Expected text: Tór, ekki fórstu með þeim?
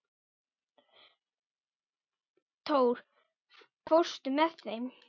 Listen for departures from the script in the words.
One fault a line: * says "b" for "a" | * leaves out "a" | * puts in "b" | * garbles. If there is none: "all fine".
* leaves out "ekki"